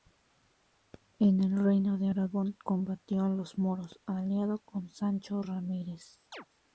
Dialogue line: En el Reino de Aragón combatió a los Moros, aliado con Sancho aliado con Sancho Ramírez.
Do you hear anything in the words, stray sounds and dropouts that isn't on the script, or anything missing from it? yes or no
yes